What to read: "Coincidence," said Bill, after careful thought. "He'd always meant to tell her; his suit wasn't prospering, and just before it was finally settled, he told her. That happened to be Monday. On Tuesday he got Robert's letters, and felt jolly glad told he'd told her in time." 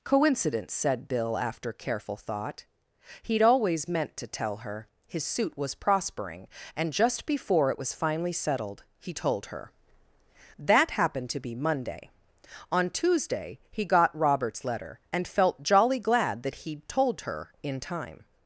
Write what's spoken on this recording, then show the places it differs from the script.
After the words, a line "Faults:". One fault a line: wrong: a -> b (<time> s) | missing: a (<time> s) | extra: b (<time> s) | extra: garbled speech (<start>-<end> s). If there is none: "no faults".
"Coincidence," said Bill, after careful thought. "He'd always meant to tell her; his suit was prospering, and just before it was finally settled, he told her. That happened to be Monday. On Tuesday he got Robert's letter, and felt jolly glad that he'd told her in time."
Faults:
wrong: wasn't -> was (5.5 s)
wrong: letters -> letter (14.6 s)
wrong: told -> that (16.4 s)